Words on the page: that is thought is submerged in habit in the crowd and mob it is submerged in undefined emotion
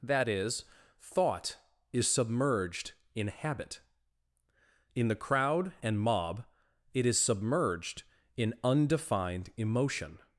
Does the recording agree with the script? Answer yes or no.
yes